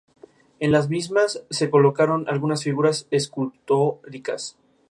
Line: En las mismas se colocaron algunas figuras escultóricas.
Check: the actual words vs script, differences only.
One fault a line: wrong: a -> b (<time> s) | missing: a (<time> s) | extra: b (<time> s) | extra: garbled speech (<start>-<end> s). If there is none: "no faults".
no faults